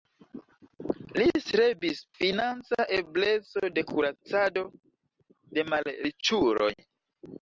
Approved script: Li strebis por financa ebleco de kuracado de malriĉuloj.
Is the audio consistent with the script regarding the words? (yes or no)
no